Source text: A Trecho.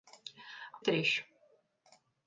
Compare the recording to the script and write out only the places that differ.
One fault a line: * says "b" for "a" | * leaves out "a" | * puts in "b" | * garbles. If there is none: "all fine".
all fine